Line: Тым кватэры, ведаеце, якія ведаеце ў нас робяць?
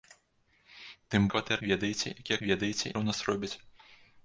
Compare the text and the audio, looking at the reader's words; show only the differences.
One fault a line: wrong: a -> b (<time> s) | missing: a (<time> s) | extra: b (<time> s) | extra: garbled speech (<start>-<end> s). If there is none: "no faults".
no faults